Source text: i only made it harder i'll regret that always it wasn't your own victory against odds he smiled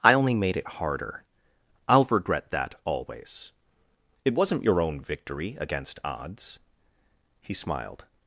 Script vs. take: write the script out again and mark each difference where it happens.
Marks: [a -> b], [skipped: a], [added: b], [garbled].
i only made it harder i'll regret that always it wasn't your own victory against odds he smiled